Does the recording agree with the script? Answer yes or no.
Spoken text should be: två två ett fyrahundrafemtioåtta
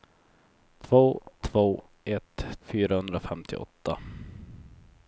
yes